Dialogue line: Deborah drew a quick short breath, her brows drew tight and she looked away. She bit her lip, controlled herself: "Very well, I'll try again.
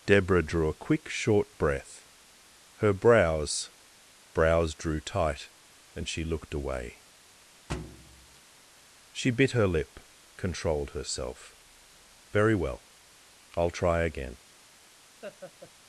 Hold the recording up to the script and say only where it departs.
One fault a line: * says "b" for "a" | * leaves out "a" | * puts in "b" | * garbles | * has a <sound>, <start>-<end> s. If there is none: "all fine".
* puts in "brows"
* has a thud, 7.7-8.4 s
* has a laugh, 15.2-15.7 s